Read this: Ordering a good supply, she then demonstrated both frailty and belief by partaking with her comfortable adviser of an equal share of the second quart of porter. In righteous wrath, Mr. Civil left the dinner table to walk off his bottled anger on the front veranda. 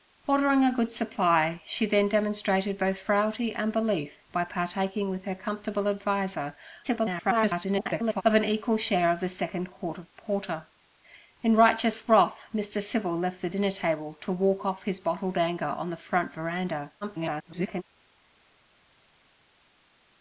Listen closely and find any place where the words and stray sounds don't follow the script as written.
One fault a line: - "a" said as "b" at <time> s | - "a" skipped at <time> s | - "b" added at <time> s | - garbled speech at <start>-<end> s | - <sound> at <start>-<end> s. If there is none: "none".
- garbled speech at 6.8-8.2 s
- garbled speech at 17.0-17.8 s